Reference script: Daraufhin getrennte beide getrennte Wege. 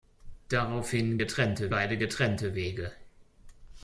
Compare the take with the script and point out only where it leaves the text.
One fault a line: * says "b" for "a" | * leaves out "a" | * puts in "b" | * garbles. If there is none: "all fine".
all fine